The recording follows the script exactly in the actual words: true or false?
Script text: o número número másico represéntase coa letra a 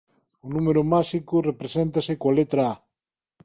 false